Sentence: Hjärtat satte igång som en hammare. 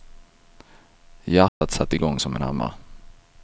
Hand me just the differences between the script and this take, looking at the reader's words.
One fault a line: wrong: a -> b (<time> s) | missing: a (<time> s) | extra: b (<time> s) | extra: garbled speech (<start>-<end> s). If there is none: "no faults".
no faults